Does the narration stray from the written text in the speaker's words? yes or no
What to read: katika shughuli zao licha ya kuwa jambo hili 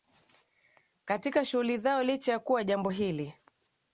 no